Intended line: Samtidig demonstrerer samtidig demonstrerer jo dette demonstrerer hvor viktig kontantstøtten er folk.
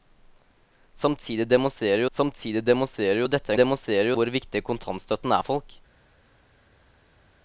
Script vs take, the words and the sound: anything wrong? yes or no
no